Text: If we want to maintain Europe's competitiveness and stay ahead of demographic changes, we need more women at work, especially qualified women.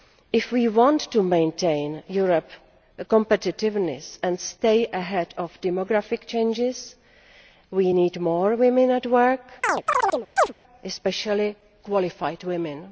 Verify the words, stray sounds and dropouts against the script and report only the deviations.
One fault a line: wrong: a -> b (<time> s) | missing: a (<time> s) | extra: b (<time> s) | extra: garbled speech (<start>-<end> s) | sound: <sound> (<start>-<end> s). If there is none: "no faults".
sound: chirp (9.6-10.5 s)